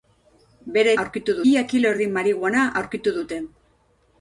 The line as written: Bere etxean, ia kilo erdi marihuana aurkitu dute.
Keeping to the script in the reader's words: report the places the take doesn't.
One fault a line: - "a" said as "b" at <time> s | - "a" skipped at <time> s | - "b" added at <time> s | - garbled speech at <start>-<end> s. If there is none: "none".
- "etxean" said as "aurkitu" at 1.1 s